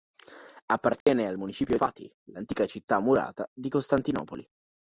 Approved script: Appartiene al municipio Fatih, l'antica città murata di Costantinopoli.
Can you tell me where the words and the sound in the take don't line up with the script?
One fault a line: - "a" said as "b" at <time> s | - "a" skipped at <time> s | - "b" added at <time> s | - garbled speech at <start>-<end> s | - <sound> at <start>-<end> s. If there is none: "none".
- dropout at 1.0-1.1 s